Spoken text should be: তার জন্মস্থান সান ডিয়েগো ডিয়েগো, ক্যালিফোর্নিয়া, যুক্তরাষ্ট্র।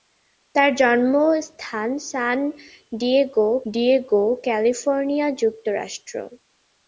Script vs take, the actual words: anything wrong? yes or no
no